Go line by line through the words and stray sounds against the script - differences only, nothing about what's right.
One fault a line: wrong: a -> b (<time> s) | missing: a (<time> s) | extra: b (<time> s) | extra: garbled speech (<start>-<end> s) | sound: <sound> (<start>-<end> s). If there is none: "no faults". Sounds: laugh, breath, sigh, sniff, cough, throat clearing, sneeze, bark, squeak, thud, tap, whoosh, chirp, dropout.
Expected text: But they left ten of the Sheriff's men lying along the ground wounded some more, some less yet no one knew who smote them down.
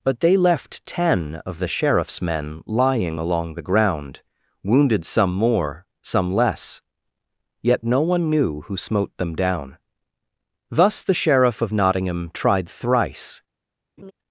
extra: Thus the Sheriff of Nottingham tried thrice (10.7 s)
sound: laugh (14.0-14.1 s)